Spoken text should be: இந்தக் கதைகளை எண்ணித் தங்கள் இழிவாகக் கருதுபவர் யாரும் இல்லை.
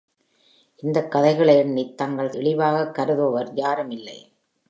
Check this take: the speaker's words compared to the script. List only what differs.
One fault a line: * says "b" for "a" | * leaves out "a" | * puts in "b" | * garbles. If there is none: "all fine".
all fine